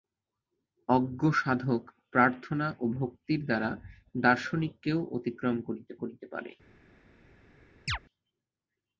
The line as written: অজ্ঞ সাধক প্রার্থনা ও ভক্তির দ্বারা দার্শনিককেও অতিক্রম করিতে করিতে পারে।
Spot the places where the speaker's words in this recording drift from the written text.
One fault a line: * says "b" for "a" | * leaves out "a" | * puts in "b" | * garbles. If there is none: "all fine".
all fine